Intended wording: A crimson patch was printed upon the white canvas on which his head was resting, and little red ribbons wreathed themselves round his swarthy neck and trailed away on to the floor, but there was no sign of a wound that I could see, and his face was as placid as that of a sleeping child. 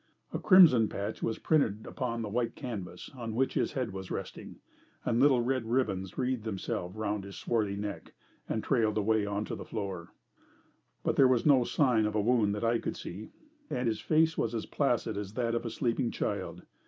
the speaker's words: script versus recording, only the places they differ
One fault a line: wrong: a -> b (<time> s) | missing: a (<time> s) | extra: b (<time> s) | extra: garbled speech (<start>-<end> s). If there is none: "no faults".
no faults